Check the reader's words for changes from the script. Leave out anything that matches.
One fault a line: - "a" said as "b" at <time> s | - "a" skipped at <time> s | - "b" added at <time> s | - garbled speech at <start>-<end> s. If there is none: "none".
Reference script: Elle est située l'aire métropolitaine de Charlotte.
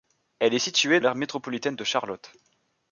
none